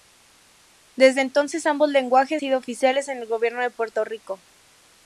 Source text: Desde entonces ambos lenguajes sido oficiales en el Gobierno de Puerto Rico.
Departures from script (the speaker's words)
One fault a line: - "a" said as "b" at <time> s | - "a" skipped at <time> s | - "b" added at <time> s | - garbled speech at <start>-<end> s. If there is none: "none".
none